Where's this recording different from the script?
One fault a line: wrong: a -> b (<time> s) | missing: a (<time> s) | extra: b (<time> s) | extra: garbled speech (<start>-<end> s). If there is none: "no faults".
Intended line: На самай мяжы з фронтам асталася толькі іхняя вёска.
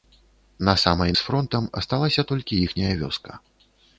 missing: мяжы (1.1 s)